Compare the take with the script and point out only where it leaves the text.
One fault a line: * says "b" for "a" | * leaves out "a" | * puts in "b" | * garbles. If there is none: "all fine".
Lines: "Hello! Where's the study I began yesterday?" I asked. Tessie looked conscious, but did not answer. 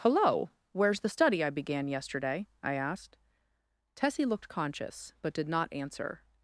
all fine